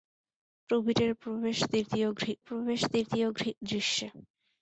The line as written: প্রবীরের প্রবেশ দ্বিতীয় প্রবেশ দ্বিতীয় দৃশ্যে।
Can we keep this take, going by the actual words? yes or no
yes